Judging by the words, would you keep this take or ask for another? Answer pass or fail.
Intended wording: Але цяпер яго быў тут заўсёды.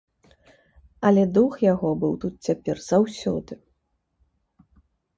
fail